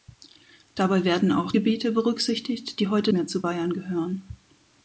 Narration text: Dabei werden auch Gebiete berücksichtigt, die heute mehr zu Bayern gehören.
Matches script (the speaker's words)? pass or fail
pass